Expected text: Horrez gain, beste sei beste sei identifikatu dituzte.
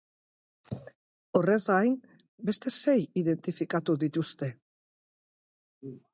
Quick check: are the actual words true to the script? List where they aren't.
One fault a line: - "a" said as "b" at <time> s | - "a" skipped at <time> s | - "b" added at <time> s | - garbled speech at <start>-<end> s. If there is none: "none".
- "beste sei" skipped at 3.0 s